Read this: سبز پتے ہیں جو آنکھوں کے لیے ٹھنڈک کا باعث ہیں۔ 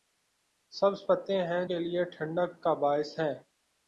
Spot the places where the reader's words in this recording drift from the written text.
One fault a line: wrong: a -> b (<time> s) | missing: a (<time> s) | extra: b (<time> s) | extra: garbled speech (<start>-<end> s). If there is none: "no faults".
missing: جو آنکھوں (1.6 s)